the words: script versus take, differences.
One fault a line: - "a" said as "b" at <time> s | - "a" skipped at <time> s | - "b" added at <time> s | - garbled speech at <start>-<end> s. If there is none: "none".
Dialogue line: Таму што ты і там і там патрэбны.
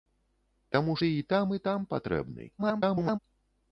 - "што" skipped at 0.9 s
- garbled speech at 2.6-3.2 s